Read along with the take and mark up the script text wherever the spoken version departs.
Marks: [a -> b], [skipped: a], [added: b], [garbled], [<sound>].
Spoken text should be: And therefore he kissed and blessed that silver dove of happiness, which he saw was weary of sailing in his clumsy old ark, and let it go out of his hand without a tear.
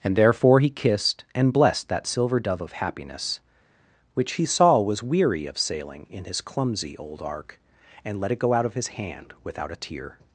And therefore he kissed and blessed that silver dove of happiness, which he saw was weary of sailing in his clumsy old ark, and let it go out of his hand without a tear.